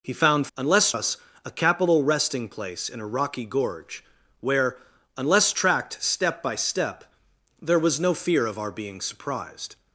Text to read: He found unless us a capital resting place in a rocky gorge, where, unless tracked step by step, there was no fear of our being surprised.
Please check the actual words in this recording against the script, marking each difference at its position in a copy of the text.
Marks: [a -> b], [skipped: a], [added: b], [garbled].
He found unless us a capital resting place in a rocky gorge, where, unless tracked step by step, there was no fear of our being surprised.